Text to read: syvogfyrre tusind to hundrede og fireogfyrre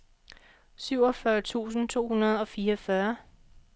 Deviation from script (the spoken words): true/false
false